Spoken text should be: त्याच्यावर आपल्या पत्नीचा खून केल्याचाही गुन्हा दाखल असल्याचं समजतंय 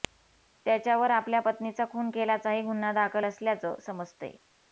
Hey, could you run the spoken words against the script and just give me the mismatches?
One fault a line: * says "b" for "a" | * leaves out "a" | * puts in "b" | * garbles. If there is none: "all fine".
all fine